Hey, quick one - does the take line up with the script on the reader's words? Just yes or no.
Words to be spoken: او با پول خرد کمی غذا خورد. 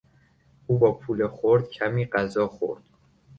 yes